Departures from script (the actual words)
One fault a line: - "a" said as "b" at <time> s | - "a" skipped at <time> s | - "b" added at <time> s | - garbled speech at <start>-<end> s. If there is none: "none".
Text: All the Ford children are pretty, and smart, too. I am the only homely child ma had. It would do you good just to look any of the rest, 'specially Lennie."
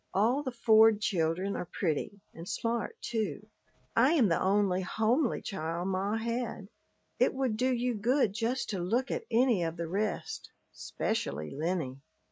- "at" added at 9.1 s